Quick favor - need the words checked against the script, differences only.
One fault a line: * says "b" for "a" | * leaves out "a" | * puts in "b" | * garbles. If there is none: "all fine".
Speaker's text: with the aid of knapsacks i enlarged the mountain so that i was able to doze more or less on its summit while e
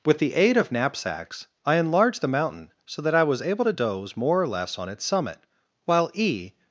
all fine